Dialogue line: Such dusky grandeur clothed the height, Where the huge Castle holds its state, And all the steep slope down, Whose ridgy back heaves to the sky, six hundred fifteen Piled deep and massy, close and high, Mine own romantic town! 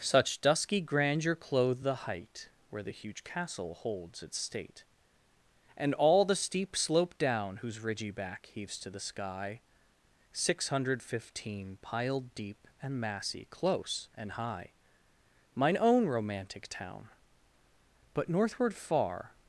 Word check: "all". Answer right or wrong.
right